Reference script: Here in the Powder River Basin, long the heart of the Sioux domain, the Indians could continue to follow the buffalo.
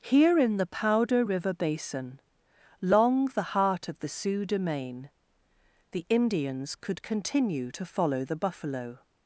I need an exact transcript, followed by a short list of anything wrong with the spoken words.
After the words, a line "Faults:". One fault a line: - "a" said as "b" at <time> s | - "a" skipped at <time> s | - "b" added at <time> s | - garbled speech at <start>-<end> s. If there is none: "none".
Here in the Powder River Basin, long the heart of the Sioux domain, the Indians could continue to follow the buffalo.
Faults:
none